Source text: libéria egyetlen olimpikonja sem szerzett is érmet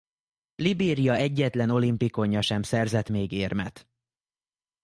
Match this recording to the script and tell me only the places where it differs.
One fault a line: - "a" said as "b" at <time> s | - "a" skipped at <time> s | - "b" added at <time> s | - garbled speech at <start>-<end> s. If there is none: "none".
- "is" said as "még" at 3.1 s